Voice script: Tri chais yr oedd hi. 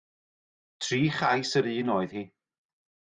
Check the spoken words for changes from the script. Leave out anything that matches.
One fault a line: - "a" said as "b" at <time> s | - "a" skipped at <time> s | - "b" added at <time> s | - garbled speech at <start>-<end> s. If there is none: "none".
- "un" added at 1.8 s